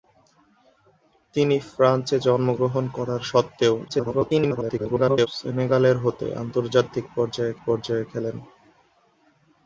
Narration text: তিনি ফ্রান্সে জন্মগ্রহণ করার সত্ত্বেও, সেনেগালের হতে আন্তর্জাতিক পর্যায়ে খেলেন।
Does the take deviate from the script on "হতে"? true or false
false